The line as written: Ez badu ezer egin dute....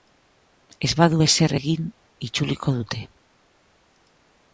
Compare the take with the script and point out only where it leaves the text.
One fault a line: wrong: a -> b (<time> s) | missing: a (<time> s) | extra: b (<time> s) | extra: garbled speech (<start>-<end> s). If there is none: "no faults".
extra: itzuliko (2.3 s)